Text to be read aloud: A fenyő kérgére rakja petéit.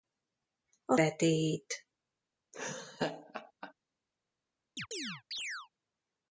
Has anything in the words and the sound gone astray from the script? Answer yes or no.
yes